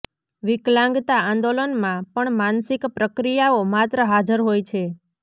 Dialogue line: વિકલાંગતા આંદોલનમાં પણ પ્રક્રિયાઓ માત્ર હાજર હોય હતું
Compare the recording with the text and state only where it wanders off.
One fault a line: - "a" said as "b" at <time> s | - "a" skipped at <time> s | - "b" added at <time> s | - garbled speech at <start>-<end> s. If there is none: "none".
- "માનસિક" added at 2.4 s
- "હતું" said as "છે" at 4.7 s